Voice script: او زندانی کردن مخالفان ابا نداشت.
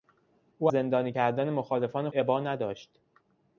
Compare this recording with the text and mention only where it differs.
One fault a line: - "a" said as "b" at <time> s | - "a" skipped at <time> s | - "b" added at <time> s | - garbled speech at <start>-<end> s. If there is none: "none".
none